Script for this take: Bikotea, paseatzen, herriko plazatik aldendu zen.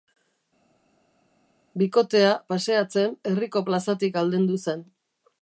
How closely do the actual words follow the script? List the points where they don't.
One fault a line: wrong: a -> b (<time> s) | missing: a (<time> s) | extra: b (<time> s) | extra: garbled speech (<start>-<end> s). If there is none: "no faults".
no faults